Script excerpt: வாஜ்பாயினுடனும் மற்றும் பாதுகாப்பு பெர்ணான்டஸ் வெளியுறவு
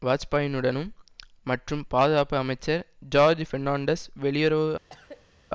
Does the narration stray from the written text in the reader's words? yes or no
yes